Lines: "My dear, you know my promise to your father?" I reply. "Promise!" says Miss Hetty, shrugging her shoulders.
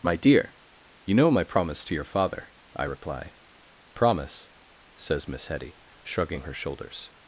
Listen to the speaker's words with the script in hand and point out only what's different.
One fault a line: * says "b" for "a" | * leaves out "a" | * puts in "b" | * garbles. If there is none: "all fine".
all fine